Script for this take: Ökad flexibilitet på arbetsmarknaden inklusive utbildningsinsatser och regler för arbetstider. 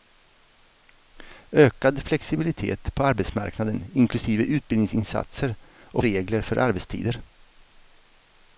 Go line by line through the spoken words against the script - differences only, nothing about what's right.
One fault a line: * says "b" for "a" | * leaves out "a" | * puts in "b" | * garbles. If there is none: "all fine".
all fine